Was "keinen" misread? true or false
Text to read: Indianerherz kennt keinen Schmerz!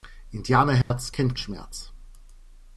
true